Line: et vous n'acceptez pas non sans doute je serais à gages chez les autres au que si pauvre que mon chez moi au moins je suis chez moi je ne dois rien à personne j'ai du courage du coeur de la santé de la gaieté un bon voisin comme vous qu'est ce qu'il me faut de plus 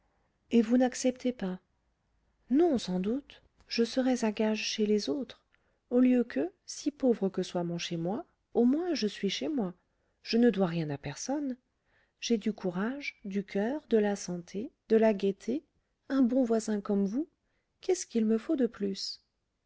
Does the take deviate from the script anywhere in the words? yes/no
yes